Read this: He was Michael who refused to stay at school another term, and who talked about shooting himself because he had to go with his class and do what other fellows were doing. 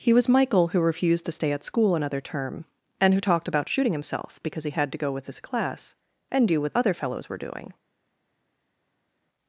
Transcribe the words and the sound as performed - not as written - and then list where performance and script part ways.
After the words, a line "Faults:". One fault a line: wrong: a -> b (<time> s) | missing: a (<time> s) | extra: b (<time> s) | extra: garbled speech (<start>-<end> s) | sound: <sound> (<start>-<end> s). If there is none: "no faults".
He was Michael who refused to stay at school another term, and who talked about shooting himself because he had to go with his class and do what other fellows were doing.
Faults:
no faults